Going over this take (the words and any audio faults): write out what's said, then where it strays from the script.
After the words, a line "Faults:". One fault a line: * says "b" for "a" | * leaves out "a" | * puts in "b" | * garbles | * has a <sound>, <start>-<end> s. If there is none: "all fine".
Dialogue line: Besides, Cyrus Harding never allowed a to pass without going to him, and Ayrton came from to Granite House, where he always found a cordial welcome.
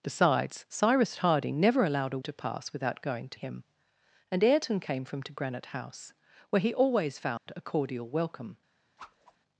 Besides, Cyrus Harding never allowed a to pass without going to him, and Ayrton came from to Granite House, where he always found a cordial welcome.
Faults:
* has a dropout, 7.4-7.5 s
* has a whoosh, 9.0-9.4 s